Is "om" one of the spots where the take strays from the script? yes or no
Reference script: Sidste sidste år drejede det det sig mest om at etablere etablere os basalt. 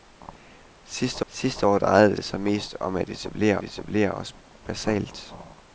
no